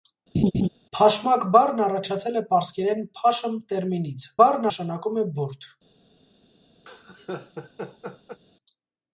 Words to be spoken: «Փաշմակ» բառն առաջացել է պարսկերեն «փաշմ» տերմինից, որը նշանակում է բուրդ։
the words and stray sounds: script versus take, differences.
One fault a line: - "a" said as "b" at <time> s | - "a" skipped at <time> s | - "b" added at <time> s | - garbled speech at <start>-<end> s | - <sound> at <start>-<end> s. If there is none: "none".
- laugh at 0.3-0.7 s
- "որը" said as "բառն" at 4.4 s
- laugh at 6.9-8.4 s